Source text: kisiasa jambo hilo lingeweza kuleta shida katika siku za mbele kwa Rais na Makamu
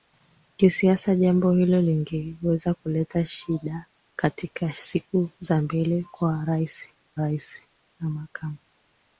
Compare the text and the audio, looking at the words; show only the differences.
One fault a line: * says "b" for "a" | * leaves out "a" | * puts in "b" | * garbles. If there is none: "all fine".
* puts in "Rais"